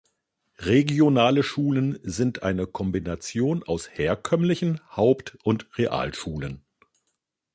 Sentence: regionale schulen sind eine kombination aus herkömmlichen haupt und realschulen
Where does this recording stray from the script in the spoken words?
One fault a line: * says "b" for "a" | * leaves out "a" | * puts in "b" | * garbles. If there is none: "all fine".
all fine